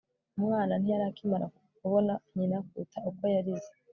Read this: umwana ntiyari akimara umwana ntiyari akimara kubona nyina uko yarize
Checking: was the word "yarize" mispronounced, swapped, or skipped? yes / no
no